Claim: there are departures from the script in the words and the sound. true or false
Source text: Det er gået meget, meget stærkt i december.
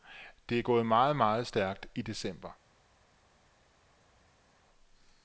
false